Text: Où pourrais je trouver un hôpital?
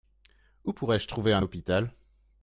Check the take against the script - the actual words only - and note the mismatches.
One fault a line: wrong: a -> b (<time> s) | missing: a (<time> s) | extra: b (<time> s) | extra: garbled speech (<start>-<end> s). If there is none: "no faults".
no faults